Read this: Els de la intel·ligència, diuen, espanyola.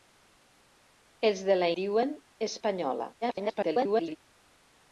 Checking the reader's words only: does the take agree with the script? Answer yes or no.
no